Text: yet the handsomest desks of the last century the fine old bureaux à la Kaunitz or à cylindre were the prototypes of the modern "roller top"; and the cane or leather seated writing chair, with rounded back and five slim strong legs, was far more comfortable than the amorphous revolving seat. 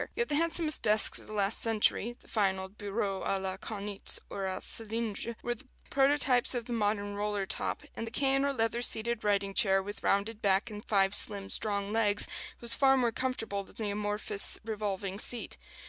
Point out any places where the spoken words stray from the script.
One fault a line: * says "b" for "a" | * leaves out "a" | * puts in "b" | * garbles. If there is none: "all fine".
all fine